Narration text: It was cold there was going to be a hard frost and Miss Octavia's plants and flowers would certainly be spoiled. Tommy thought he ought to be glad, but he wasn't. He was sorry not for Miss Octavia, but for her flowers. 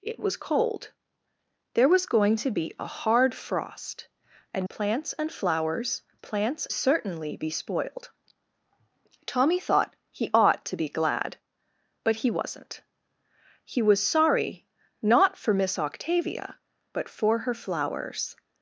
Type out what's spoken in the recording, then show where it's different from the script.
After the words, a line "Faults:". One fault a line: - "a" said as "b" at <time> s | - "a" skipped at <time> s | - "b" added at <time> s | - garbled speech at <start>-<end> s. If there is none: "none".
It was cold there was going to be a hard frost and Plants and flowers plants certainly be spoiled. Tommy thought he ought to be glad, but he wasn't. He was sorry not for Miss Octavia, but for her flowers.
Faults:
- "Miss Octavia's" skipped at 4.7 s
- "would" said as "plants" at 6.2 s